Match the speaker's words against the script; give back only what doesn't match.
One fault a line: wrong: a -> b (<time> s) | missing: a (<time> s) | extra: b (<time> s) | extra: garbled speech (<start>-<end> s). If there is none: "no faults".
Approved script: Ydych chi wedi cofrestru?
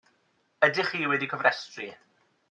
no faults